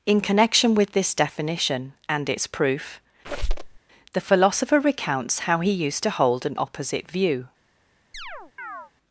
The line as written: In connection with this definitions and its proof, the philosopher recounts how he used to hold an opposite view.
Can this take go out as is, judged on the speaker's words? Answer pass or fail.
fail